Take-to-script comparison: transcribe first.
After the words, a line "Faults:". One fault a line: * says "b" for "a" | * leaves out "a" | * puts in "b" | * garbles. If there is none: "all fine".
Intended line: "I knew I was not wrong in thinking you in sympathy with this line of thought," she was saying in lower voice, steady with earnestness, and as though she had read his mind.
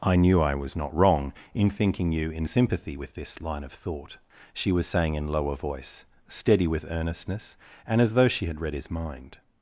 "I knew I was not wrong in thinking you in sympathy with this line of thought," she was saying in lower voice, steady with earnestness, and as though she had read his mind.
Faults:
all fine